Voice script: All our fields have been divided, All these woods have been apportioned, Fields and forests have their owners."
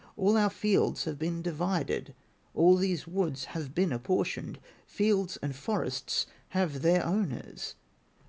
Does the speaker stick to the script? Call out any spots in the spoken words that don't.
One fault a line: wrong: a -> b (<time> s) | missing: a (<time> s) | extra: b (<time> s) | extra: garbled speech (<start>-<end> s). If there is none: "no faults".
no faults